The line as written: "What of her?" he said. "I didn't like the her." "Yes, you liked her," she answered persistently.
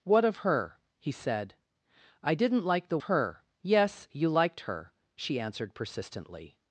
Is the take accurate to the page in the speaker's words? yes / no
yes